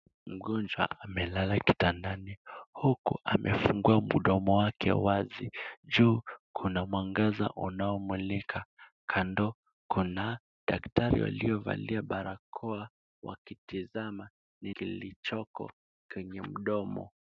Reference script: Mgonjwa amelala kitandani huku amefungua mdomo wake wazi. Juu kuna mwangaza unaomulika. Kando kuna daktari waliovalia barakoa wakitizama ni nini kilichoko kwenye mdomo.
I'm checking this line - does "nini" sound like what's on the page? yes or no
no